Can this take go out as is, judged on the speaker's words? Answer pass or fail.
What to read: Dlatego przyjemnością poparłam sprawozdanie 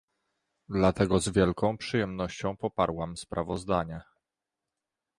fail